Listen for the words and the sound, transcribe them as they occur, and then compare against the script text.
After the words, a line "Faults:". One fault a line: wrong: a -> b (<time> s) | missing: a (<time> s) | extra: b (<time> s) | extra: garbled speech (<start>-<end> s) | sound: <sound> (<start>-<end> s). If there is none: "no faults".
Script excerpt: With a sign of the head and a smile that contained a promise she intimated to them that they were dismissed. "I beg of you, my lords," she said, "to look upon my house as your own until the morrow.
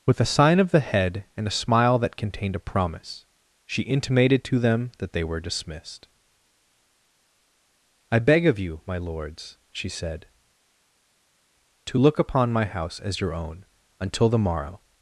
With a sign of the head and a smile that contained a promise she intimated to them that they were dismissed. "I beg of you, my lords," she said, "to look upon my house as your own until the morrow.
Faults:
no faults